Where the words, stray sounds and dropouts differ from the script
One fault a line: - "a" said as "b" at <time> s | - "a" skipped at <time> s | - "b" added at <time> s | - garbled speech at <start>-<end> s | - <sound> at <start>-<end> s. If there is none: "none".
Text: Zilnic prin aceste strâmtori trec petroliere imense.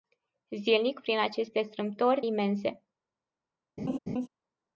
- "trec petroliere" skipped at 2.2 s
- laugh at 3.8-4.3 s